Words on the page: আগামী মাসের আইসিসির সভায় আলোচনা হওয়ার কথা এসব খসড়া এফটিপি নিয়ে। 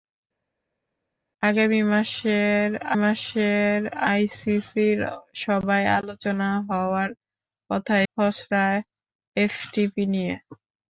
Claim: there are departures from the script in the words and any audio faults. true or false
true